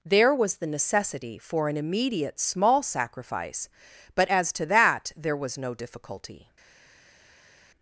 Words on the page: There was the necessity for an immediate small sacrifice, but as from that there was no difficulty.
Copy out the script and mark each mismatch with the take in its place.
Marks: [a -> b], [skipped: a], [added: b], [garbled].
There was the necessity for an immediate small sacrifice, but as [from -> to] that there was no difficulty.